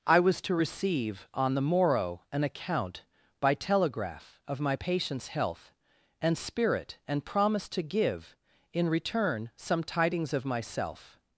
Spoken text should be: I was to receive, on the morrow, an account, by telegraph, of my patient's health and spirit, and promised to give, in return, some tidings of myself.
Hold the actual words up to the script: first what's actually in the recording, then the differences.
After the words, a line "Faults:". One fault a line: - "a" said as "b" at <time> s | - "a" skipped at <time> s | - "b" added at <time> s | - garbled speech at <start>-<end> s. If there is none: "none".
I was to receive, on the morrow, an account, by telegraph, of my patient's health and spirit, and promised to give, in return, some tidings of myself.
Faults:
none